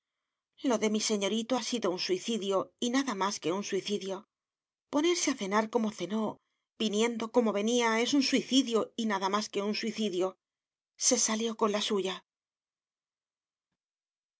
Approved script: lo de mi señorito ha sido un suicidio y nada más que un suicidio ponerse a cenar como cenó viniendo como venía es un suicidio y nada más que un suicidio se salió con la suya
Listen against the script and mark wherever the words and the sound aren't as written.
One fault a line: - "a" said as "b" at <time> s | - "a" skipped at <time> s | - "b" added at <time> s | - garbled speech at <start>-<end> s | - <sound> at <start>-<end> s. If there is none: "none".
none